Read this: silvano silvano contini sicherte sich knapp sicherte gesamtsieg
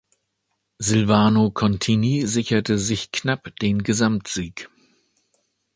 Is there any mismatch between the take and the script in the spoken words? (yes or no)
yes